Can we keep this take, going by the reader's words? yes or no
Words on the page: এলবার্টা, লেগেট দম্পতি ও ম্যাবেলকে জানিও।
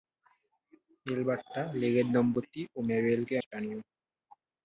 yes